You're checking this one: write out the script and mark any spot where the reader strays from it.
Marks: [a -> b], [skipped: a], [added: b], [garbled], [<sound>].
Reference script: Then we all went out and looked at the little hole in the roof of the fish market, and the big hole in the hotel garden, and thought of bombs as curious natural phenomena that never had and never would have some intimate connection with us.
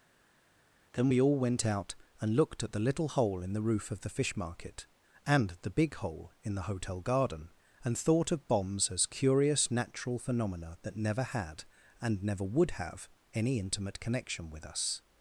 Then we all went out and looked at the little hole in the roof of the fish market, and the big hole in the hotel garden, and thought of bombs as curious natural phenomena that never had and never would have [some -> any] intimate connection with us.